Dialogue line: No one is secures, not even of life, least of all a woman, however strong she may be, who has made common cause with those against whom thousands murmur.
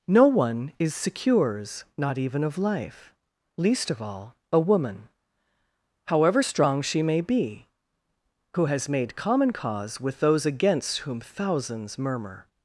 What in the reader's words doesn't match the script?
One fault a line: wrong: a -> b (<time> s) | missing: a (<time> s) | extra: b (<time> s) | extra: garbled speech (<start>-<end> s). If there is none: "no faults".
no faults